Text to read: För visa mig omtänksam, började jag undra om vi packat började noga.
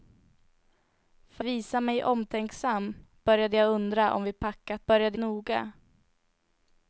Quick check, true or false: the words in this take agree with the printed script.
true